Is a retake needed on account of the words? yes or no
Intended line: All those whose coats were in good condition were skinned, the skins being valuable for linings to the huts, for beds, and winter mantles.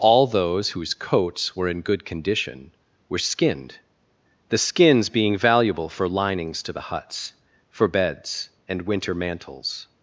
no